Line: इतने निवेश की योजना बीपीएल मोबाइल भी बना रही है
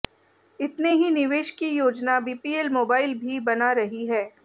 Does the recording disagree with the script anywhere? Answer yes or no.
yes